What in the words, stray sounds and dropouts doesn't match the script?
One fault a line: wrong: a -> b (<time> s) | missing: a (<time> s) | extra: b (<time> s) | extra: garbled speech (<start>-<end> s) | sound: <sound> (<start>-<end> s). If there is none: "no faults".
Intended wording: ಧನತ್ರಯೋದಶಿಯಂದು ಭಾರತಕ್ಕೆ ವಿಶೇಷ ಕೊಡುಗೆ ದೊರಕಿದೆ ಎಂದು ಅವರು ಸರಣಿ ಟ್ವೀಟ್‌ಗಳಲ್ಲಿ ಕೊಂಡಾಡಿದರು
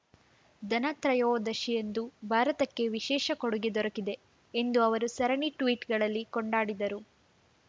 no faults